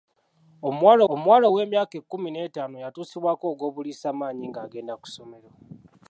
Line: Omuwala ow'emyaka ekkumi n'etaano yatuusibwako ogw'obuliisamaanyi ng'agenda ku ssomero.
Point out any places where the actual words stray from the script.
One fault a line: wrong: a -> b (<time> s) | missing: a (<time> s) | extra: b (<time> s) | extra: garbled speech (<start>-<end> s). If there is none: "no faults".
extra: omuwala (1.1 s)